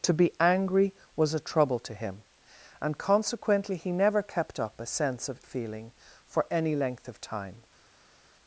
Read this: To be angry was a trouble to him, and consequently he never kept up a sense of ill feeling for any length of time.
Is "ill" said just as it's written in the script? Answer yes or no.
no